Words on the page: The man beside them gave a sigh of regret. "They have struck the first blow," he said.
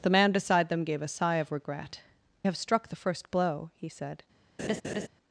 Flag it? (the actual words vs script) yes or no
yes